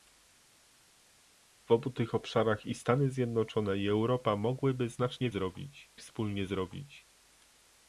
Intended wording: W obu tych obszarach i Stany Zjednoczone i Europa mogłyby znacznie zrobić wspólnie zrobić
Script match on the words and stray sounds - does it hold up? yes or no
yes